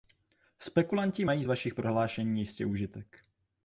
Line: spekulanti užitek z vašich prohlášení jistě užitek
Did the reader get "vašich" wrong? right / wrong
right